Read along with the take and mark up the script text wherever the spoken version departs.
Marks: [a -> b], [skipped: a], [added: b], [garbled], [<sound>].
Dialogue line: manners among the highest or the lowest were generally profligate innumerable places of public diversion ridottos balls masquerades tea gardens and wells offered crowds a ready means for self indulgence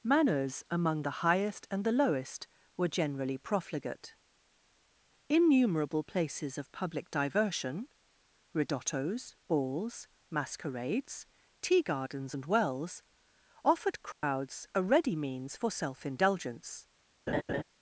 manners among the highest [or -> and] the lowest were generally profligate innumerable places of public diversion ridottos balls masquerades tea gardens and wells offered crowds [dropout] a ready means for self indulgence [laugh]